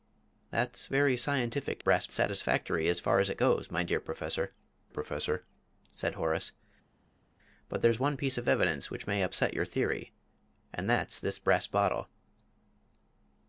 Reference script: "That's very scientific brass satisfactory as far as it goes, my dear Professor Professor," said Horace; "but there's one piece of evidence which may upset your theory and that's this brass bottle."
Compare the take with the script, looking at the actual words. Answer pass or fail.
pass